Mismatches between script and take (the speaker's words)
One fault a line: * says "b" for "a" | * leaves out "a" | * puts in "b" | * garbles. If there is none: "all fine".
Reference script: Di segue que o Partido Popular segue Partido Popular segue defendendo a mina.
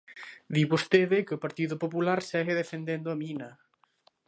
* says "vostede" for "segue"
* leaves out "Partido Popular segue"